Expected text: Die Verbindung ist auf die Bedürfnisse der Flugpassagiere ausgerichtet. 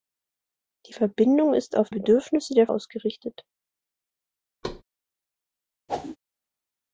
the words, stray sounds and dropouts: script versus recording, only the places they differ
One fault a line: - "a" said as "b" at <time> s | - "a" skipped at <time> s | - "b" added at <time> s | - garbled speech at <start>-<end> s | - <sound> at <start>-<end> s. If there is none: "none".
- "die" skipped at 1.9 s
- "Flugpassagiere" skipped at 2.7 s
- thud at 4.6-4.8 s
- whoosh at 5.9-6.2 s